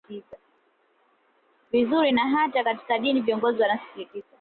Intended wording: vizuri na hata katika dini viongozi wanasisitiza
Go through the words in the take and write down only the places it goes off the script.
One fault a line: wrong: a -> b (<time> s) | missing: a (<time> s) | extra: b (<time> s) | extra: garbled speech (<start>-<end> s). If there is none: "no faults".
no faults